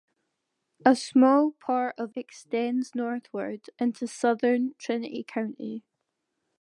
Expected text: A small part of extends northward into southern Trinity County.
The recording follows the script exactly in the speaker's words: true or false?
true